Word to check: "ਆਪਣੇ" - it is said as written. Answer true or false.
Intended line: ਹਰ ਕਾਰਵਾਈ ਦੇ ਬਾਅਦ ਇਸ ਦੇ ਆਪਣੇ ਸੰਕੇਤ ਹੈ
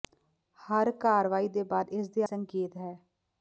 false